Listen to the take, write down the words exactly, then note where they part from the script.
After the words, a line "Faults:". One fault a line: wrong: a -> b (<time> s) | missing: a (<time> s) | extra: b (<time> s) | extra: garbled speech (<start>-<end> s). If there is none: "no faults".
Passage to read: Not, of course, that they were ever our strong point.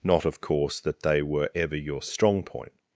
Not, of course, that they were ever your strong point.
Faults:
wrong: our -> your (1.8 s)